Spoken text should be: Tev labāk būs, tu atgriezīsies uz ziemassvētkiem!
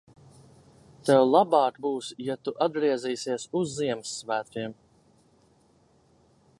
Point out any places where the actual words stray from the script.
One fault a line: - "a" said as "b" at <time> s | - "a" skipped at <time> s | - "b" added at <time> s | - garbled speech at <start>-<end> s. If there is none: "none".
- "ja" added at 2.3 s